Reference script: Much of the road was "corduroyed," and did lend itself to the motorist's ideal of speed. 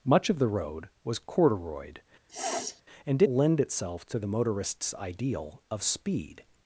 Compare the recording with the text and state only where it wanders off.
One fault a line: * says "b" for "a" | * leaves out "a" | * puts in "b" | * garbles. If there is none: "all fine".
all fine